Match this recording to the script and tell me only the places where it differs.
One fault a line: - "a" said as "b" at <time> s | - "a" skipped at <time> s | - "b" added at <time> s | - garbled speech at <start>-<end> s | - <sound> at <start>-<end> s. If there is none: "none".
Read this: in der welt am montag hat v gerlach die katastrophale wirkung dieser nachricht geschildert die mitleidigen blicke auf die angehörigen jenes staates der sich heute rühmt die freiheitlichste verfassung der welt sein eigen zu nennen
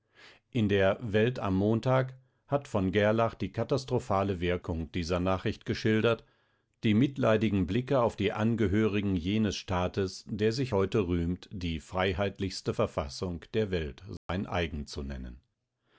- dropout at 14.2-14.3 s